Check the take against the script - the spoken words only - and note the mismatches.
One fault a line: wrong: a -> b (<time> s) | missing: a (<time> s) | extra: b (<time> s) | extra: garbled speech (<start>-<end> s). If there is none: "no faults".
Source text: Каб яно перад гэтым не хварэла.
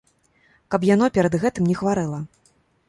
no faults